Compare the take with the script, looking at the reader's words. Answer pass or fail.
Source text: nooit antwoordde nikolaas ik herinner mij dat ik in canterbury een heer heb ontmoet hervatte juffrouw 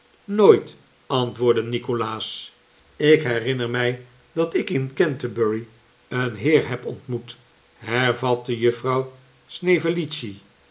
pass